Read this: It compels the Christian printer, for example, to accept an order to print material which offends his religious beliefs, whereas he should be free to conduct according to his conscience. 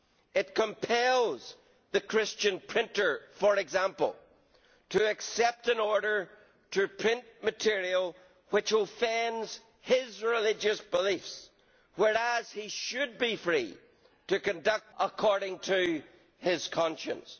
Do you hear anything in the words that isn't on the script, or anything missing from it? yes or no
no